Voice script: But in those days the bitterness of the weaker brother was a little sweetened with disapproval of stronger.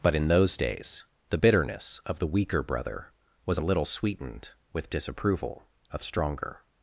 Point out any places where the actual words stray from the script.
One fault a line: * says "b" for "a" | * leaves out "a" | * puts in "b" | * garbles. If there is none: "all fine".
all fine